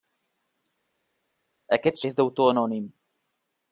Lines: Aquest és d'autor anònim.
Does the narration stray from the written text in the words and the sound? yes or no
no